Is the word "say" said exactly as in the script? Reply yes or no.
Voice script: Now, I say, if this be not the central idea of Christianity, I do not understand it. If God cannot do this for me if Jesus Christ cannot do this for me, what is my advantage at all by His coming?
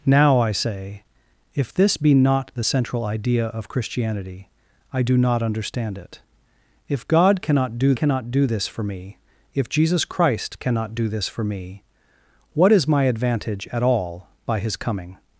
yes